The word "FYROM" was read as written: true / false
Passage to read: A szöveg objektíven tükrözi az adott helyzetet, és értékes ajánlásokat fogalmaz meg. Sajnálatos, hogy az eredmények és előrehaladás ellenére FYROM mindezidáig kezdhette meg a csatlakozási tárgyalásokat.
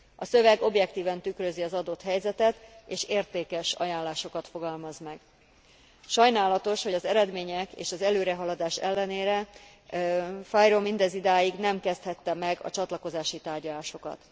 true